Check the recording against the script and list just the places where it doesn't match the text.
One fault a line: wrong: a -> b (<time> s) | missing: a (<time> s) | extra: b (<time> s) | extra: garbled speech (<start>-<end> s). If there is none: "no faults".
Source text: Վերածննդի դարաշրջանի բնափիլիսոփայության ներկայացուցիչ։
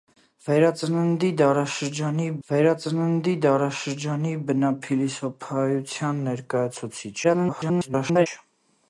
extra: վերածննդի դարաշրջանի (2.5 s)
extra: garbled speech (7.2-8.3 s)